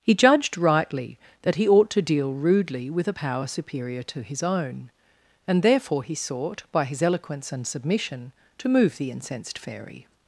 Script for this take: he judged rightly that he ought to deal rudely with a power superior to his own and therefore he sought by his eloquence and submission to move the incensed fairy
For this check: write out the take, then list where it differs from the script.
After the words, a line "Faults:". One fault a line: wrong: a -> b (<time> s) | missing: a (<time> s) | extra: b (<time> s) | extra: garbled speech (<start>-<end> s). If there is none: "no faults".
he judged rightly that he ought to deal rudely with a power superior to his own and therefore he sought by his eloquence and submission to move the incensed fairy
Faults:
no faults